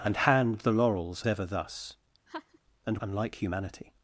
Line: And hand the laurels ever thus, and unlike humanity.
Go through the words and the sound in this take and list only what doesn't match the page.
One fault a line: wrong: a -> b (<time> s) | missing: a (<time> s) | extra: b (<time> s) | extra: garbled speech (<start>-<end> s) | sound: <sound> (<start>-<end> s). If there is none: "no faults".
sound: laugh (2.3-2.6 s)